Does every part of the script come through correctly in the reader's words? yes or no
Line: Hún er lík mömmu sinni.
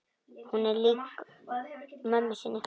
yes